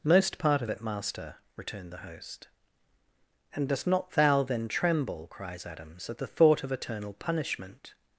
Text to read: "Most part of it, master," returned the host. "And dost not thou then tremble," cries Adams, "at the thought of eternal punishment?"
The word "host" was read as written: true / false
true